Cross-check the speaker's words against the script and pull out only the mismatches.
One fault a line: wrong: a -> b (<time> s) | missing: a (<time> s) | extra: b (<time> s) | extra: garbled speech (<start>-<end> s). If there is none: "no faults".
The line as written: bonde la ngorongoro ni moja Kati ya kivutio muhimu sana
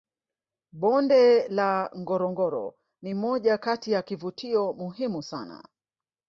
no faults